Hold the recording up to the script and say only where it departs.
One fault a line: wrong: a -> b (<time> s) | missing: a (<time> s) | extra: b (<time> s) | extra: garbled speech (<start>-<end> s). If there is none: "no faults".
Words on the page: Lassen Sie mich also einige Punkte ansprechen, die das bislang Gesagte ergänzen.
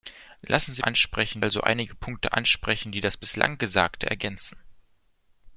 wrong: mich -> ansprechen (0.8 s)